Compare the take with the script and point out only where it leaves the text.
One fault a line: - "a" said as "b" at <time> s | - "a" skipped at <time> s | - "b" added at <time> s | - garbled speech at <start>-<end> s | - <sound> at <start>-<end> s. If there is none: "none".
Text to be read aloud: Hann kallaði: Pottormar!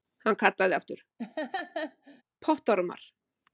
- "aftur" added at 0.8 s
- laugh at 1.2-2.2 s